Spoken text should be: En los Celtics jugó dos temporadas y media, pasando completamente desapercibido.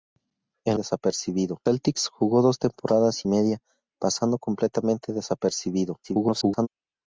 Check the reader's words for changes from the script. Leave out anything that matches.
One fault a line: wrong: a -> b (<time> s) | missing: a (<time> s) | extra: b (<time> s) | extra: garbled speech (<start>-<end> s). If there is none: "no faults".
wrong: los -> desapercibido (0.7 s)
extra: garbled speech (6.0-6.7 s)